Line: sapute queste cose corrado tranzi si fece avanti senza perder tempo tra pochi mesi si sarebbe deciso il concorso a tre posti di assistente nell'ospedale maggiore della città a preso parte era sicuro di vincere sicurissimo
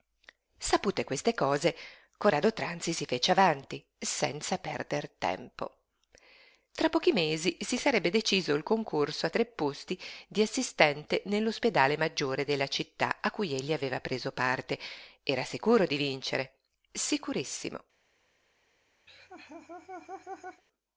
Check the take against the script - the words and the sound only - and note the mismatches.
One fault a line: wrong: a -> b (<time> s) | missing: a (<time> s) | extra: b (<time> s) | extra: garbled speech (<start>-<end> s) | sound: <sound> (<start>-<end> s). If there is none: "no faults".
extra: cui egli aveva (13.3 s)
sound: laugh (19.1-20.6 s)